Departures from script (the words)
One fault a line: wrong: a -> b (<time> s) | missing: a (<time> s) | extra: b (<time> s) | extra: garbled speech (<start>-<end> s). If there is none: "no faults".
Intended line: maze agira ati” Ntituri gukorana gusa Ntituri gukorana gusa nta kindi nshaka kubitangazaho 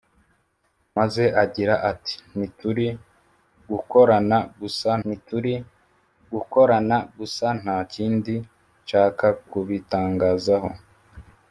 no faults